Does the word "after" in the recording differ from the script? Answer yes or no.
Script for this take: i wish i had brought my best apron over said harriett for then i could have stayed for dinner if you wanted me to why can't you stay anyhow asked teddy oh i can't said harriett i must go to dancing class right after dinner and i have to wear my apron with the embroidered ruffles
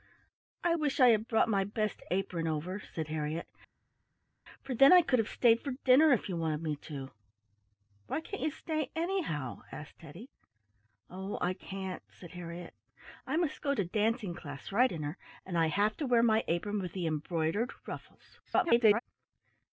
yes